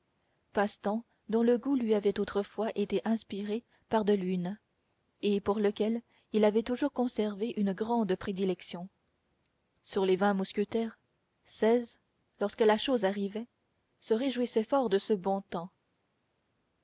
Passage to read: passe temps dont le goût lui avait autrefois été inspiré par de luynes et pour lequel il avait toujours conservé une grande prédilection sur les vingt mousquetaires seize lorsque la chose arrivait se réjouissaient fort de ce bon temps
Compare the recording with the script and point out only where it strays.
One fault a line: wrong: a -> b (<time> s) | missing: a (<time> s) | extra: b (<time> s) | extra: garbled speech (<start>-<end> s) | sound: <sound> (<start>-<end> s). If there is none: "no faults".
no faults